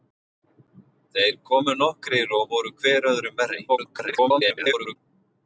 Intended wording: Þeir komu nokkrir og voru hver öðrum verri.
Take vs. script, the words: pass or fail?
fail